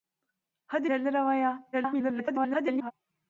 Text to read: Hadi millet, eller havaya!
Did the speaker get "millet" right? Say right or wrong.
wrong